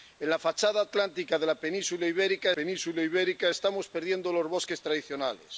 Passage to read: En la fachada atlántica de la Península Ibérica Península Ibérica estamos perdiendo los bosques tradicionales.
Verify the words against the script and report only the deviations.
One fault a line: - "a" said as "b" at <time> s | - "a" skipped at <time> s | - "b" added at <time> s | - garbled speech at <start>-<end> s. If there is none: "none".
none